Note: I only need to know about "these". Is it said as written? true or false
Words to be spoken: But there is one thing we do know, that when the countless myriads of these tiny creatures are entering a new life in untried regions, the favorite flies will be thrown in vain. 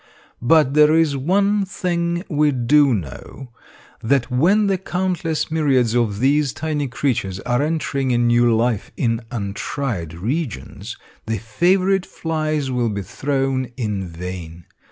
true